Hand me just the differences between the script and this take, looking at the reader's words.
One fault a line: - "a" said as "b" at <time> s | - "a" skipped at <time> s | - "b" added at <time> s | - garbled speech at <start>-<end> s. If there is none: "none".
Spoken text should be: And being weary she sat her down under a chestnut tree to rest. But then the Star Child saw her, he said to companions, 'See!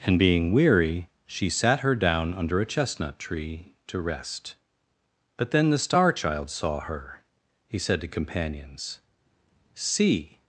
none